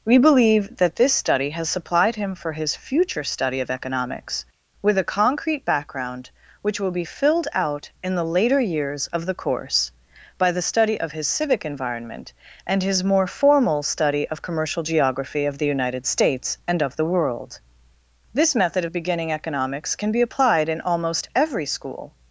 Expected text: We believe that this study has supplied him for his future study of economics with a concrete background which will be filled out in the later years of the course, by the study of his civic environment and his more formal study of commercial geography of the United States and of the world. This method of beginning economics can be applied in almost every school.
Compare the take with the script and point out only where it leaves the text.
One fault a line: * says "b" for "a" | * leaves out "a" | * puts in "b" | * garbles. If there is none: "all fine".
all fine